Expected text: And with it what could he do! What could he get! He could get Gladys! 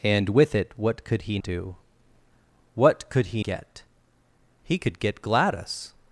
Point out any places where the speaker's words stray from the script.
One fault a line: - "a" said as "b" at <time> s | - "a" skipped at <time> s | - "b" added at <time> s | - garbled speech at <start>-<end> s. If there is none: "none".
none